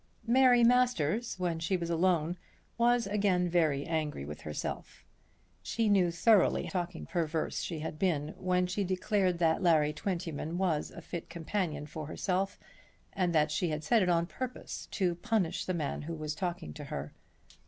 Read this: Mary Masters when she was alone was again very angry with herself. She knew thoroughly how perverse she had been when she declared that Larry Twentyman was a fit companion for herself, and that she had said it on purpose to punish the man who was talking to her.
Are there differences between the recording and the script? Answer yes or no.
yes